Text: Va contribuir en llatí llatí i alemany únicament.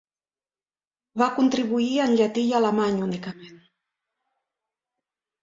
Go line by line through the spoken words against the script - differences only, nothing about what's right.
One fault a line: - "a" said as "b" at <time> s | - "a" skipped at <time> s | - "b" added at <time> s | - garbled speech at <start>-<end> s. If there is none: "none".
- "llatí" skipped at 2.5 s